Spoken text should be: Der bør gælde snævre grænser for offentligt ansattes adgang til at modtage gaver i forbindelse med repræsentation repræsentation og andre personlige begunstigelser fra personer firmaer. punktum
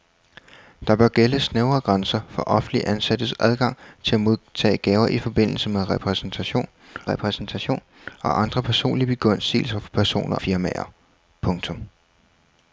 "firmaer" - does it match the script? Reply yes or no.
yes